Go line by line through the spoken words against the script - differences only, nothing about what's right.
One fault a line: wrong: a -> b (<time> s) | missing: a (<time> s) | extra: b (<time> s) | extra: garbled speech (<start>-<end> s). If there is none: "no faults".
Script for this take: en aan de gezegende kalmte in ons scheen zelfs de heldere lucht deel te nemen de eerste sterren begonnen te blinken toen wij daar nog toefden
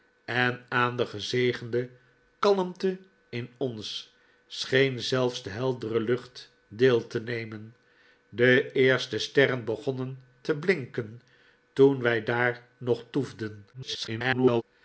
extra: garbled speech (13.7-14.6 s)